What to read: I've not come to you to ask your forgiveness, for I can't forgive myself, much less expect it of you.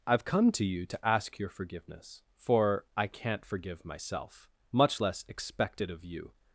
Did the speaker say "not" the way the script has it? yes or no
no